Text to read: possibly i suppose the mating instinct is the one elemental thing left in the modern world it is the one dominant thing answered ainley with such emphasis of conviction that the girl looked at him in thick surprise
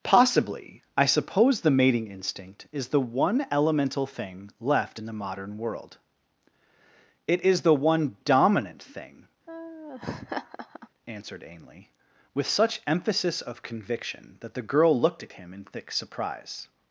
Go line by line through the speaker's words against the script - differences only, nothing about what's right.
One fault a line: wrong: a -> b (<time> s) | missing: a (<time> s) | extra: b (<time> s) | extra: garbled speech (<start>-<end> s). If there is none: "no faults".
no faults